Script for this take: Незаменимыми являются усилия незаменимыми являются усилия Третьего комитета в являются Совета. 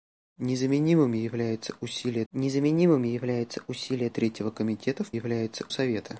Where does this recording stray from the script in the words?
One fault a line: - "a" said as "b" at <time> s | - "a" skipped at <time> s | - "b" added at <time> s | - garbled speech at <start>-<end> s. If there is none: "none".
none